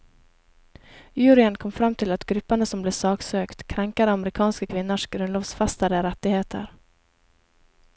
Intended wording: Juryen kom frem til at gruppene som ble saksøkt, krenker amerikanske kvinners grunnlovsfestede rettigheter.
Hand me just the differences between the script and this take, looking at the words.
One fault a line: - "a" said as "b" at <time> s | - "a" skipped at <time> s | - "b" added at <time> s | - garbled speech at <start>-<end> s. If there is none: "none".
none